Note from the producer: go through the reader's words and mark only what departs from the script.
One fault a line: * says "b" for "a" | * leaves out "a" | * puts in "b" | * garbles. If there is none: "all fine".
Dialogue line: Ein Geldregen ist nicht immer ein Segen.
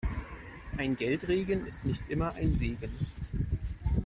all fine